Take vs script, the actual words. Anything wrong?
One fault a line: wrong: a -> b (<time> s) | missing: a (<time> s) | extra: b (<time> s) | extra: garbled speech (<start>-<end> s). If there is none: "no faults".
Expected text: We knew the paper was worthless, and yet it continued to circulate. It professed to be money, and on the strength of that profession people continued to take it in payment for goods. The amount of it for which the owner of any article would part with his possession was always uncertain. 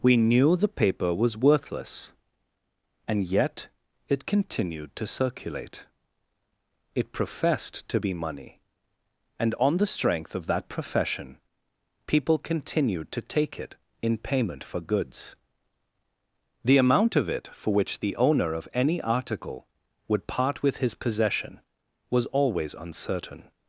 no faults